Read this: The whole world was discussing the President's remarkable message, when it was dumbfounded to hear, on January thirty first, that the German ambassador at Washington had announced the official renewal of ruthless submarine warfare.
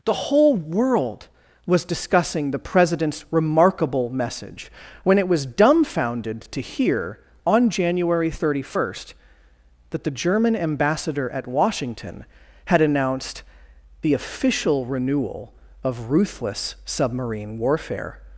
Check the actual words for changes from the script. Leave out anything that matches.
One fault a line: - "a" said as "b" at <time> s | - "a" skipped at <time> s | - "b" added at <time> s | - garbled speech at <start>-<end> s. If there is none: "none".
none